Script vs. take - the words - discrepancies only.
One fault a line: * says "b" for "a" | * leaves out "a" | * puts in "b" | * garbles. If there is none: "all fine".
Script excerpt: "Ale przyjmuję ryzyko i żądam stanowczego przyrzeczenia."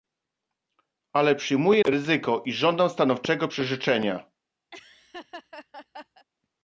all fine